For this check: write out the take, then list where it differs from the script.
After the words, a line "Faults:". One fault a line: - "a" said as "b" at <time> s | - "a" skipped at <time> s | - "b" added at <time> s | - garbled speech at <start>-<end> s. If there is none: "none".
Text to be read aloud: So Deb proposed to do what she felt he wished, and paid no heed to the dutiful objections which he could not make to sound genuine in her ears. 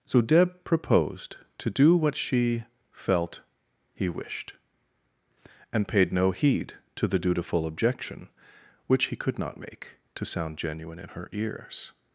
So Deb proposed to do what she felt he wished, and paid no heed to the dutiful objection which he could not make to sound genuine in her ears.
Faults:
- "objections" said as "objection" at 7.7 s